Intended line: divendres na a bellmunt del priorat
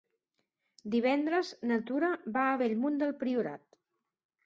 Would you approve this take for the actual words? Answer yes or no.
no